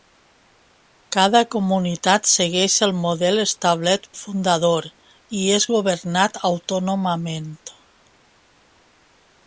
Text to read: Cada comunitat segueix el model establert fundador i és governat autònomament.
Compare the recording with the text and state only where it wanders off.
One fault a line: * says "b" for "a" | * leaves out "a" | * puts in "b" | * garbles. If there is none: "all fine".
all fine